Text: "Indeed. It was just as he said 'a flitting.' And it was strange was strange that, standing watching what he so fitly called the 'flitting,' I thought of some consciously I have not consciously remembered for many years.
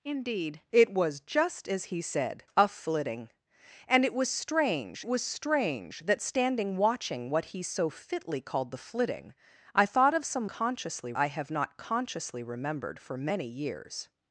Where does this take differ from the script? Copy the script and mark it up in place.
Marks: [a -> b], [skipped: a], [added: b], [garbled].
"Indeed. It was just as he said 'a flitting.' And it was strange was strange that, standing watching what he so fitly called the 'flitting,' I thought of some consciously I have not consciously remembered for many years.